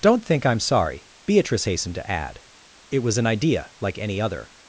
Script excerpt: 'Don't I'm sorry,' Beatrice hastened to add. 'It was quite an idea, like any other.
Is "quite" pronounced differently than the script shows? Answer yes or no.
yes